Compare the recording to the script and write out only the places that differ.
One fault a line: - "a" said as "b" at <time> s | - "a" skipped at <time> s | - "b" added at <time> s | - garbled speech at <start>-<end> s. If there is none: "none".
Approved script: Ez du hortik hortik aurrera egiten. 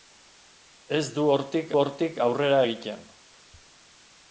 none